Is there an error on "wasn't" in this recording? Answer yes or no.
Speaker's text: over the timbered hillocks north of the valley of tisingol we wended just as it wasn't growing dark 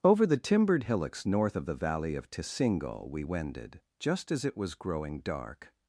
yes